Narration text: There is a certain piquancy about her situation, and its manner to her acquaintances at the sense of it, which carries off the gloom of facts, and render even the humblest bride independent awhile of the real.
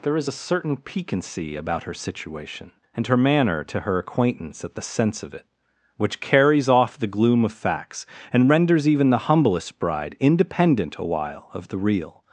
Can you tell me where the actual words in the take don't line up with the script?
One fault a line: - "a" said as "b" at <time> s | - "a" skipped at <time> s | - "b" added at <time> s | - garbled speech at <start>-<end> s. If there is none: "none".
- "its" said as "her" at 3.1 s
- "acquaintances" said as "acquaintance" at 4.0 s
- "render" said as "renders" at 8.5 s